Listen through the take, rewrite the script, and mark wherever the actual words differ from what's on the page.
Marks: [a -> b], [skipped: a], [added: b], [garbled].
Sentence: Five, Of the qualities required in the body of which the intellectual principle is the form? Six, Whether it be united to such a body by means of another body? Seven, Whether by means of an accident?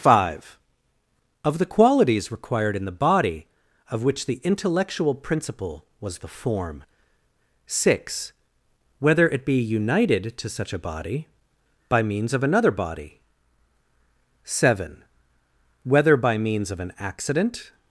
Five, Of the qualities required in the body of which the intellectual principle [is -> was] the form? Six, Whether it be united to such a body by means of another body? Seven, Whether by means of an accident?